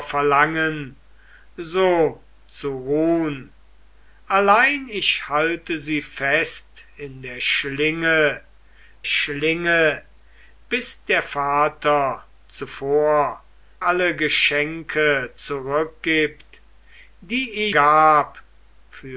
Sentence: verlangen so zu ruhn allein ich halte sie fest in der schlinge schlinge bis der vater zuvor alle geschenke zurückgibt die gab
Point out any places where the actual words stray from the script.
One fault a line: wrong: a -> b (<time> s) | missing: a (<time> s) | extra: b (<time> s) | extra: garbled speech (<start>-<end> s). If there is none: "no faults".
no faults